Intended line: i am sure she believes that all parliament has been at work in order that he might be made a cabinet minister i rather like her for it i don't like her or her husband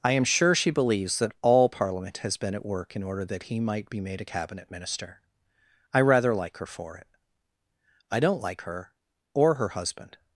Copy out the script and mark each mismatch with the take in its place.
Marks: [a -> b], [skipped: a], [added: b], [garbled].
i am sure she believes that all parliament has been at work in order that he might be made a cabinet minister i rather like her for it i don't like her or her husband